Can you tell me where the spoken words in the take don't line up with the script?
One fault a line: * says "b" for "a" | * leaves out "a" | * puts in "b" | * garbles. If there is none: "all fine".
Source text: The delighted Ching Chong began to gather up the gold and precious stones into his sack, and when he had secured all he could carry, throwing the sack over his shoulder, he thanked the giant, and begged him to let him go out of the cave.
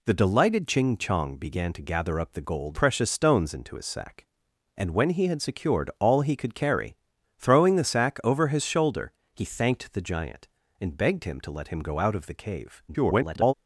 * leaves out "and"
* garbles